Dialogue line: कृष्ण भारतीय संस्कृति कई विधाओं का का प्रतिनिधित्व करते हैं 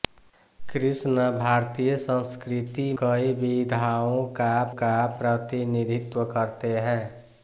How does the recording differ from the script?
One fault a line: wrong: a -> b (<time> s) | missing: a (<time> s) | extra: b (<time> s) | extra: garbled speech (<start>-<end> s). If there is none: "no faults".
no faults